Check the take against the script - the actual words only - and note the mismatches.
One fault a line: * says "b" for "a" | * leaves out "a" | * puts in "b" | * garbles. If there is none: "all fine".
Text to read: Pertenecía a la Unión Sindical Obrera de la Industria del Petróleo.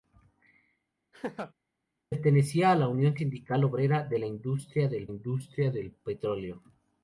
* puts in "Industria del"